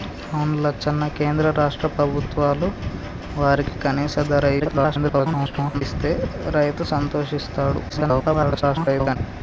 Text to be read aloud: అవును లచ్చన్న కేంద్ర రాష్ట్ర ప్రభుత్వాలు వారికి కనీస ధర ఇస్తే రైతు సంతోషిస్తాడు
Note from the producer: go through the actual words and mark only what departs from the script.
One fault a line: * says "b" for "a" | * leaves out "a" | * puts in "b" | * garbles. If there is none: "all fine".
* garbles
* garbles